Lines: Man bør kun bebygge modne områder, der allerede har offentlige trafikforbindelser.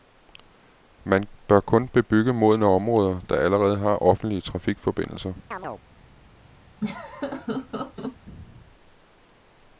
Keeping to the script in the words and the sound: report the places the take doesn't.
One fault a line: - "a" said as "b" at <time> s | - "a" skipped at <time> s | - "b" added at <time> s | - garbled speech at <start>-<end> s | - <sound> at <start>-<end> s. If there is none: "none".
- chirp at 5.5-5.8 s
- laugh at 6.8-8.2 s